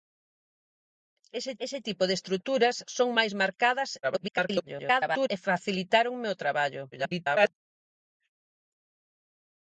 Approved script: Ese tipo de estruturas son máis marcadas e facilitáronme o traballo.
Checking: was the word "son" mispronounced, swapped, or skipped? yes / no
no